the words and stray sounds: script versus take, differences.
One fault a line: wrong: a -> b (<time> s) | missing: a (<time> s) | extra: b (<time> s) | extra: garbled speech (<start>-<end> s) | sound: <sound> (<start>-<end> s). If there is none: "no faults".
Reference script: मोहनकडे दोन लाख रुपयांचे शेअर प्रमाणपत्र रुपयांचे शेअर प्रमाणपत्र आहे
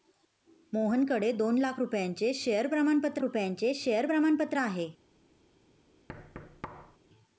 sound: thud (6.1-7.0 s)